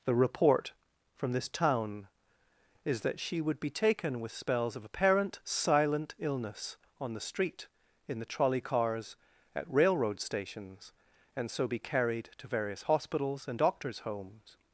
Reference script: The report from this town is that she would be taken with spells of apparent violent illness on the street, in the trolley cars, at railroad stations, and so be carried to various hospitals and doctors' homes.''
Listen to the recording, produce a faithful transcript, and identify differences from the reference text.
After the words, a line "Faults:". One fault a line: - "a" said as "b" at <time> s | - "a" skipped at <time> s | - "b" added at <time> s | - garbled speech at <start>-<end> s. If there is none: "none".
The report from this town is that she would be taken with spells of apparent silent illness on the street, in the trolley cars, at railroad stations, and so be carried to various hospitals and doctors' homes.''
Faults:
- "violent" said as "silent" at 5.4 s